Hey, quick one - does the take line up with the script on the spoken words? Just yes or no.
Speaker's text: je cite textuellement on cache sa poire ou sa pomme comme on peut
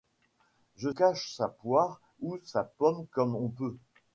no